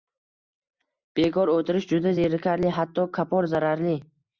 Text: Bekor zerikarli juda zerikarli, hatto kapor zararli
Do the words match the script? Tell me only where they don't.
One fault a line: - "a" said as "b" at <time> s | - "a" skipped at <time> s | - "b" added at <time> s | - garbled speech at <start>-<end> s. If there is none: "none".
- "zerikarli" said as "o‘tirish" at 1.6 s